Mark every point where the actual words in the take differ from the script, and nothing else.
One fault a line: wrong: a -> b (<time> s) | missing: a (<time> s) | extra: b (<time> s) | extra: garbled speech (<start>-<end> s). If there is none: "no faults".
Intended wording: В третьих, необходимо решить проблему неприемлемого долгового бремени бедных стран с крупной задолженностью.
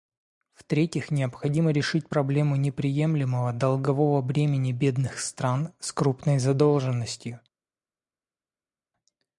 no faults